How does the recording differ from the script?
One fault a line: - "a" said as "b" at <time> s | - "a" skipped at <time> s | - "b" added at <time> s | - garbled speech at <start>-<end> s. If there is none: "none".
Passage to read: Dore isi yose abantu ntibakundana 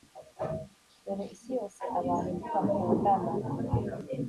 none